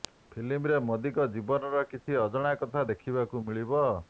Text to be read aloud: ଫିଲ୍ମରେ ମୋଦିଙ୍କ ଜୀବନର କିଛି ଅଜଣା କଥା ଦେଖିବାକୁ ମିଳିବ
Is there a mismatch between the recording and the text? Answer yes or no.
no